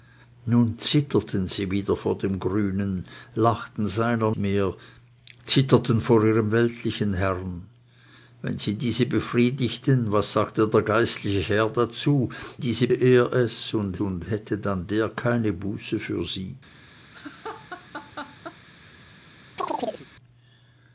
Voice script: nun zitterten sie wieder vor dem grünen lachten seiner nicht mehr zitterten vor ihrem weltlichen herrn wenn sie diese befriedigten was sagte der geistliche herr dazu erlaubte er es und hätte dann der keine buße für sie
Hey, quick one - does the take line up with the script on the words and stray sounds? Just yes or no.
no